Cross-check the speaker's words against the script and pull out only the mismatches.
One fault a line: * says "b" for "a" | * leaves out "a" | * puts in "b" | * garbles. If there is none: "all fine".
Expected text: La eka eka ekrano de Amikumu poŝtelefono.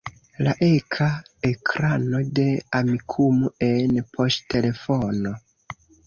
* leaves out "eka"
* puts in "en"